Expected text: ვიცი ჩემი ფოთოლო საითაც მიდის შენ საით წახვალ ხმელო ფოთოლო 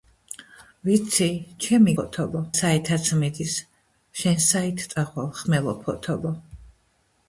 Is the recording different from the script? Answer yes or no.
no